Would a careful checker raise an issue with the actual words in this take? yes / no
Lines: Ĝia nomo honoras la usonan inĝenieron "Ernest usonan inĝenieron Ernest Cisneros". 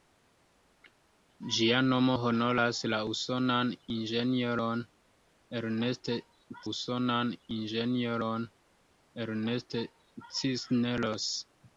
no